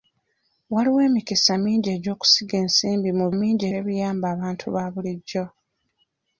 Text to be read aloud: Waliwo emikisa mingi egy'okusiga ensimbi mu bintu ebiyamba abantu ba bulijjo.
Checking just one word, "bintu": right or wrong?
wrong